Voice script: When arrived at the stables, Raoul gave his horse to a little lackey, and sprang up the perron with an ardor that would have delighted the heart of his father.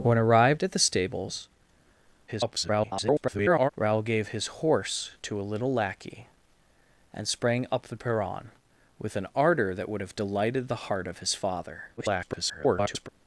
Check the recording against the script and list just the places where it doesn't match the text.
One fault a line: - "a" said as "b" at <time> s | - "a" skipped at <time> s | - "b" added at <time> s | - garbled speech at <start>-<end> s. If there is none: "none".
- garbled speech at 2.3-3.7 s
- garbled speech at 12.0-13.1 s